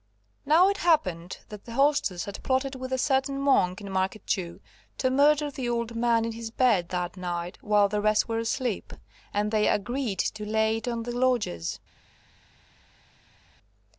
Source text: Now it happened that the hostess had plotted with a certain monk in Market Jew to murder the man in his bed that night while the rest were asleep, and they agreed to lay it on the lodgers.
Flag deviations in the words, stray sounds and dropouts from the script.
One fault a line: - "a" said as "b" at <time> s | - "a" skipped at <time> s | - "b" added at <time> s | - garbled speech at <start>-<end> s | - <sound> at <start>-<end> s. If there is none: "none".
- "old" added at 5.7 s